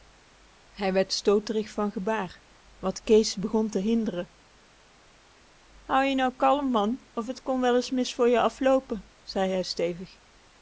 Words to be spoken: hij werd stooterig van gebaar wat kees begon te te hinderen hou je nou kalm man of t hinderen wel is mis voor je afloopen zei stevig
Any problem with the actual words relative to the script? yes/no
yes